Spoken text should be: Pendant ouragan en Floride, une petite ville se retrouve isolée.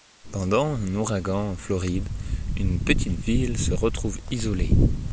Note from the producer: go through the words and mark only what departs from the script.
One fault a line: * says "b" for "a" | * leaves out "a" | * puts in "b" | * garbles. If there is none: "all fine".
* puts in "un"